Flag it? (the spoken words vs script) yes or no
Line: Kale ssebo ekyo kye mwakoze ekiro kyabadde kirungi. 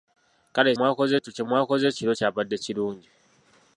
yes